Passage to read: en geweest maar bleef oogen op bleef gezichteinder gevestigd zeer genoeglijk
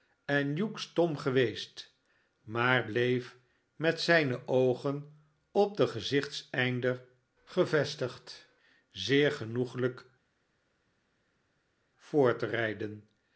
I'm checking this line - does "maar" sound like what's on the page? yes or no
yes